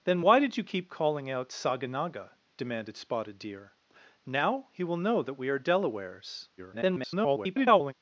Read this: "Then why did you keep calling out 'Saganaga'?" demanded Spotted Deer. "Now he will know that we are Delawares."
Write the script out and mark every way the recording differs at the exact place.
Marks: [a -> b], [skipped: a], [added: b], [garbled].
"Then why did you keep calling out 'Saganaga'?" demanded Spotted Deer. "Now he will know that we are Delawares." [garbled]